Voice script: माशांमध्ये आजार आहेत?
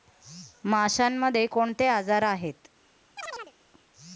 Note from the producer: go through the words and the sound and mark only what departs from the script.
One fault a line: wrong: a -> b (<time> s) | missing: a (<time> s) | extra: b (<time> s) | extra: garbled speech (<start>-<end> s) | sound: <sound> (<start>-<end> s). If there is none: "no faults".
extra: कोणते (1.5 s)
sound: chirp (3.2-3.5 s)